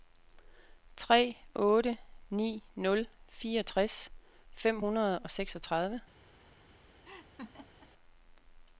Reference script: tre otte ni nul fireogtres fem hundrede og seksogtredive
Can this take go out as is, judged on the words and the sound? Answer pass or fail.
fail